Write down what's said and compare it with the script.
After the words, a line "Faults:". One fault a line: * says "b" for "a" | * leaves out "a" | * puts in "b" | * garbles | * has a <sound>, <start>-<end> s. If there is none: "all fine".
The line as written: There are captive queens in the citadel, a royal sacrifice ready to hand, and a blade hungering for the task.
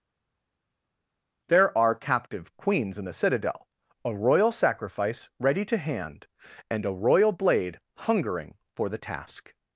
There are captive queens in the citadel, a royal sacrifice ready to hand, and a royal blade hungering for the task.
Faults:
* puts in "royal"